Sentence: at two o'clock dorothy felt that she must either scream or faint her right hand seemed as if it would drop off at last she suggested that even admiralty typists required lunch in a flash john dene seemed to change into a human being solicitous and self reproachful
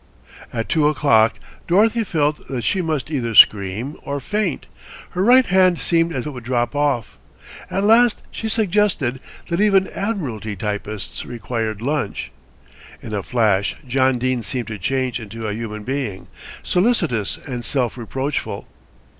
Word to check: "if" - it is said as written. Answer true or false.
false